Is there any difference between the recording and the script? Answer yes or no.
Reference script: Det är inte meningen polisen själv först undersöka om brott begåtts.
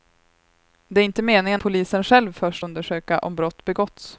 no